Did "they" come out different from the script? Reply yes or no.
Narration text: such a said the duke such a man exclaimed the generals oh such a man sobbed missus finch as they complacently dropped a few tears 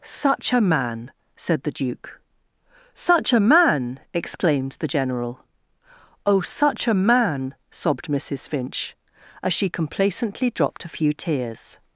yes